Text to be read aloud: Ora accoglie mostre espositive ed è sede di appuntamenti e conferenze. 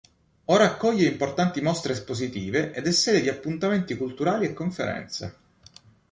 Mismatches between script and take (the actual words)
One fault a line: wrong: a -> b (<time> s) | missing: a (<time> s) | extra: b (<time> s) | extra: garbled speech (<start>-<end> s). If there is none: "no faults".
extra: importanti (1.1 s)
extra: culturali (4.0 s)